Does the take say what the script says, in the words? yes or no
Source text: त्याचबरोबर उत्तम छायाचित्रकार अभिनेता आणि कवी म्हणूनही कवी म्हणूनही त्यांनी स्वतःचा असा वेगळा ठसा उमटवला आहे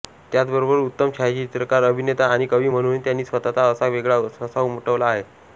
no